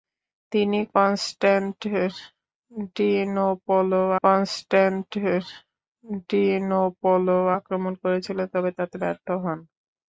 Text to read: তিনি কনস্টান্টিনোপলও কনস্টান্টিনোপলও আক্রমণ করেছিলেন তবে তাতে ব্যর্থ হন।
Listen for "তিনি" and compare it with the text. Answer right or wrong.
right